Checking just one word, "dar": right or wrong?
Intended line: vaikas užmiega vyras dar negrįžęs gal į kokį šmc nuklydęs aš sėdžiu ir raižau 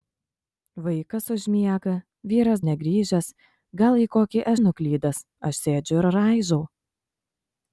wrong